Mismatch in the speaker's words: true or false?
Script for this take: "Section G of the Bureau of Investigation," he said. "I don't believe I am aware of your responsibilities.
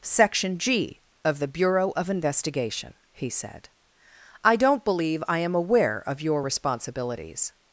false